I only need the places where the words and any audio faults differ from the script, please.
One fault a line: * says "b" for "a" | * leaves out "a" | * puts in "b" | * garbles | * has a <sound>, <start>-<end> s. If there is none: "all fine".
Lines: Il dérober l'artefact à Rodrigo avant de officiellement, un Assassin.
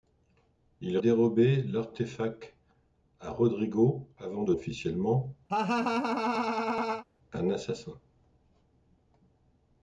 * has a laugh, 5.5-7.0 s